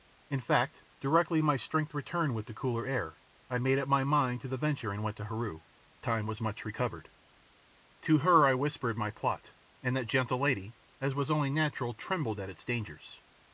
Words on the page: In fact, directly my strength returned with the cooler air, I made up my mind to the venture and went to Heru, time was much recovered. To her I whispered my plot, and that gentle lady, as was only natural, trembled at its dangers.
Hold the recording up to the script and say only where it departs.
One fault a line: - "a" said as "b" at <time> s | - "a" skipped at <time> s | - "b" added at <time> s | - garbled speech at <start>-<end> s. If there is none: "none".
none